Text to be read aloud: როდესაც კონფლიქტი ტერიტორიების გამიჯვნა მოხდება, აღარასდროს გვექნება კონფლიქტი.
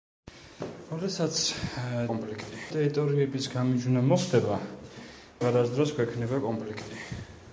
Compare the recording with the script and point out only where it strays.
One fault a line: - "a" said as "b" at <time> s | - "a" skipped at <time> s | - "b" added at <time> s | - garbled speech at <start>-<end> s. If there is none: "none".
none